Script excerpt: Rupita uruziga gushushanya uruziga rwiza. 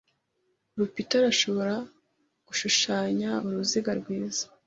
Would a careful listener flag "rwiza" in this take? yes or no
no